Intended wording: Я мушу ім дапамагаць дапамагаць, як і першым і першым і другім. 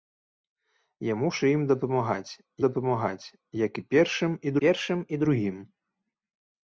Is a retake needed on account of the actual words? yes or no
no